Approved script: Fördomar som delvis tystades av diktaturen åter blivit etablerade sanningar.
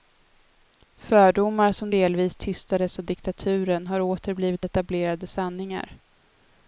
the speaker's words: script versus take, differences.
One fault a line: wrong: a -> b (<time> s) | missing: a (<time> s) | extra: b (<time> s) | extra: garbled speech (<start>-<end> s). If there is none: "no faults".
extra: har (3.9 s)